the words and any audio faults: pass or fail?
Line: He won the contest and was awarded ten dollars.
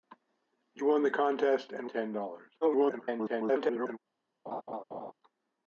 fail